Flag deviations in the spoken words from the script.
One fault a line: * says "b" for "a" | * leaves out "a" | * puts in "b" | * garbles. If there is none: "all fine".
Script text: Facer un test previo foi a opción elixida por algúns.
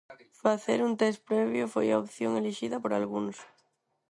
all fine